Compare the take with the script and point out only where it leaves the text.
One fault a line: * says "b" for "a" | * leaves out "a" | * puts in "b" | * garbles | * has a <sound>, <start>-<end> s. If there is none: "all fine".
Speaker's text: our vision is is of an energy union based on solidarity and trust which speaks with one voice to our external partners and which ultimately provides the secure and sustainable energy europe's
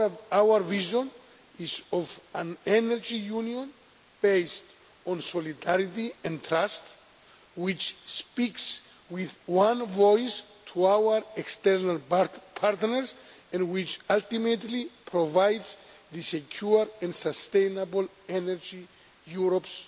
* leaves out "is"